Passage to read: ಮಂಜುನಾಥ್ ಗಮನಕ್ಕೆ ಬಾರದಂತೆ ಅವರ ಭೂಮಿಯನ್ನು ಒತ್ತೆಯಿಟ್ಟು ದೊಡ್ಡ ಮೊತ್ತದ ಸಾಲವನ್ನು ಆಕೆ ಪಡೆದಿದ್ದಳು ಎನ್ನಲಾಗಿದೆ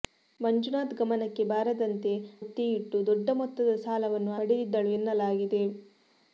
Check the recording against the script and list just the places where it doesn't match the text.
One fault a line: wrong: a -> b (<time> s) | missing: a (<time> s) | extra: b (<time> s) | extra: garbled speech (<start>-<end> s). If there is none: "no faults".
missing: ಅವರ ಭೂಮಿಯನ್ನು (2.1 s)
missing: ಆಕೆ (4.3 s)